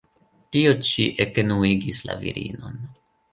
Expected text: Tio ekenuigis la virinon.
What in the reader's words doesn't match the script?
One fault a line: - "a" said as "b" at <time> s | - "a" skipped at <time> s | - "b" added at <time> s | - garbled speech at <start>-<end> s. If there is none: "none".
- "ĉi" added at 0.9 s